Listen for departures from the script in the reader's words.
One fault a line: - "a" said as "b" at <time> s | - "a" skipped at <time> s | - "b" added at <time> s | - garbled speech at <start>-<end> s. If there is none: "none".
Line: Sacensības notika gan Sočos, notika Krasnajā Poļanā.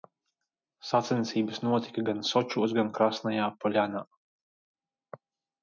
- "notika" said as "gan" at 2.8 s